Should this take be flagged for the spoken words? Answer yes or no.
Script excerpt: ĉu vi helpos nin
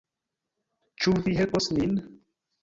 no